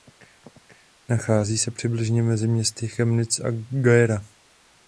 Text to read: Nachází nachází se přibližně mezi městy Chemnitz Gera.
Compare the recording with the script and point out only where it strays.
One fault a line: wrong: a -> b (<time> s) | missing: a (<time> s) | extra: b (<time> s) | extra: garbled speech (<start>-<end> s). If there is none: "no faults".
missing: nachází (1.6 s)
extra: a (3.4 s)